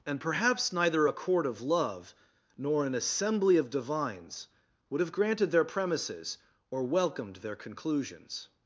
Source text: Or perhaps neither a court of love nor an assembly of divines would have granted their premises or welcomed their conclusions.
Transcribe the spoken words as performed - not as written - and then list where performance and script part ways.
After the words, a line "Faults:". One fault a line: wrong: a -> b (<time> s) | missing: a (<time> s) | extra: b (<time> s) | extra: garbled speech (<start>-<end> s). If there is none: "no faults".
And perhaps neither a court of love nor an assembly of divines would have granted their premises or welcomed their conclusions.
Faults:
wrong: Or -> And (0.1 s)